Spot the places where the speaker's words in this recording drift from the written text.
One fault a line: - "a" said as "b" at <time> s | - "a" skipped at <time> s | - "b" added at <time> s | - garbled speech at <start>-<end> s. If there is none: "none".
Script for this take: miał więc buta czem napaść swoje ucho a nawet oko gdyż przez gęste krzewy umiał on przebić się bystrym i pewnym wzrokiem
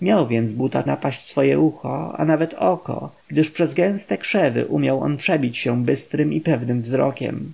- "czem" skipped at 0.8 s